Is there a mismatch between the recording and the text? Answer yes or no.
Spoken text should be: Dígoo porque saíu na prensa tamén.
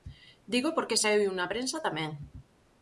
no